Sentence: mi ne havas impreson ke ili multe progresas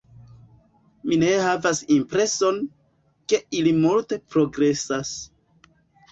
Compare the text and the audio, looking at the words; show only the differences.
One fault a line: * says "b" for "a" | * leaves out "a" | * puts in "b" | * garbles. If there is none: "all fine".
all fine